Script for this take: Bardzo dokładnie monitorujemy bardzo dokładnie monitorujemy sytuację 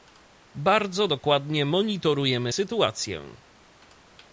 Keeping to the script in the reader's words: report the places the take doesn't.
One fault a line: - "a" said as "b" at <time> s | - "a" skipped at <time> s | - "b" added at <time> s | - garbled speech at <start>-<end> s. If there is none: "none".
- "bardzo dokładnie monitorujemy" skipped at 2.5 s